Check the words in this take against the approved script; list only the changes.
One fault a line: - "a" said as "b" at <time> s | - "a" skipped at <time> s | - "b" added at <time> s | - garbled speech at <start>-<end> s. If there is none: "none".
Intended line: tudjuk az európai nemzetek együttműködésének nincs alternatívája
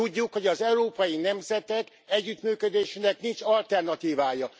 - "hogy" added at 0.3 s